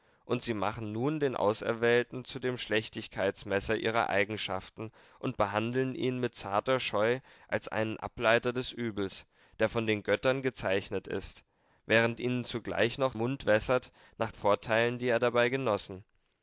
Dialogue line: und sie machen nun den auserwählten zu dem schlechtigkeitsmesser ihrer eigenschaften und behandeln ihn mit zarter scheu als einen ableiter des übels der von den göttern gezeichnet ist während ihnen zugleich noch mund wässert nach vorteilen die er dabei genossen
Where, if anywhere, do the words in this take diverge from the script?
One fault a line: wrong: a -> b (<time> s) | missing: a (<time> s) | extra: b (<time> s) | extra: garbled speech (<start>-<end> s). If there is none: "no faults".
no faults